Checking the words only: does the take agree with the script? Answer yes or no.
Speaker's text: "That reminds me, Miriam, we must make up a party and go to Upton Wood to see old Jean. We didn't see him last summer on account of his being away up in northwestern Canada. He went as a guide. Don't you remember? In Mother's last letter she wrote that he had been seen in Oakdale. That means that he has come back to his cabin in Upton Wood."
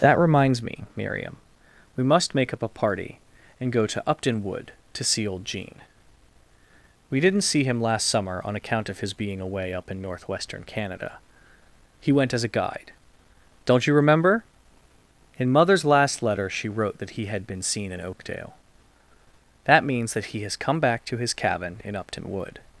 yes